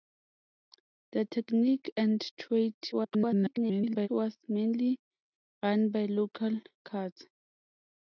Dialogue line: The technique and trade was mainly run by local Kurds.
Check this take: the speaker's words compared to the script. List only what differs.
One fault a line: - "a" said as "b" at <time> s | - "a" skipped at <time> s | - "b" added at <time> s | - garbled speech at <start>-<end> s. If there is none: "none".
- garbled speech at 2.9-4.1 s